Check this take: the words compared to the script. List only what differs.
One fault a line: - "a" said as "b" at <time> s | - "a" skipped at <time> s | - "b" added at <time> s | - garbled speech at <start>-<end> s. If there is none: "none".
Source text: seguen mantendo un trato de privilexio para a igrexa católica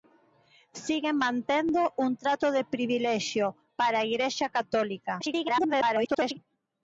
- garbled speech at 5.2-6.4 s